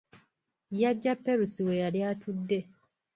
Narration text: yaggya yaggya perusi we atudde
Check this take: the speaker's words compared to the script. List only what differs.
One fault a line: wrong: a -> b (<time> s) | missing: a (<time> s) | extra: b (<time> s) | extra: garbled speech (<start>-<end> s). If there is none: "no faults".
missing: yaggya (1.1 s)
extra: yali (1.8 s)